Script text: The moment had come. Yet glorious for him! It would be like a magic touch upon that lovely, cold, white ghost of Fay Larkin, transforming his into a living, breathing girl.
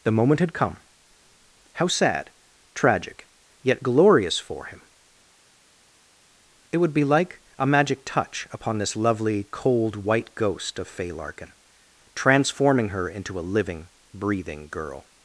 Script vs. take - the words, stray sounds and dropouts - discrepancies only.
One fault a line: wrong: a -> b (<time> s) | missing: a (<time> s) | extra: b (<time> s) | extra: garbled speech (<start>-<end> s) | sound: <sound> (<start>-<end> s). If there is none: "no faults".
extra: How sad tragic (1.7 s)
wrong: that -> this (8.8 s)
wrong: his -> her (12.9 s)